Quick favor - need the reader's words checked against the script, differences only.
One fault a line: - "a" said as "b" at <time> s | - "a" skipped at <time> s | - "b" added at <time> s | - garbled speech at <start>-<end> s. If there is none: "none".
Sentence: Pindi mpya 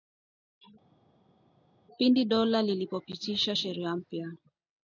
- "dola lilipopitisha sheria" added at 2.2 s